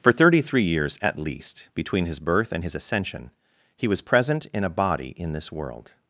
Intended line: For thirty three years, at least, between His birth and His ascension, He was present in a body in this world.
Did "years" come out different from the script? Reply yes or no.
no